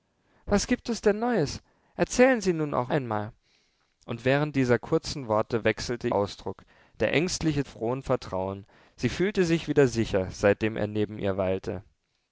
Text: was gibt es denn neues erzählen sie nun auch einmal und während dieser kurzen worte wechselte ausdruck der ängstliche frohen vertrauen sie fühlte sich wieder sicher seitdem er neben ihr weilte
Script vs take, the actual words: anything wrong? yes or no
no